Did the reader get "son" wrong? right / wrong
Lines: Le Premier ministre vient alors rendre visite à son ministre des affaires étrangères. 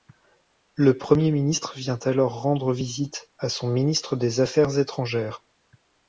right